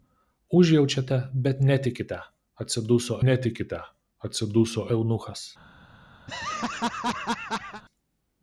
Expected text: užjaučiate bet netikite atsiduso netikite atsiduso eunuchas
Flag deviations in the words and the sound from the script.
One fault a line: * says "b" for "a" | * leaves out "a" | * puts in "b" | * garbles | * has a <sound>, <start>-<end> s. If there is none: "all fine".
* has a laugh, 6.3-7.8 s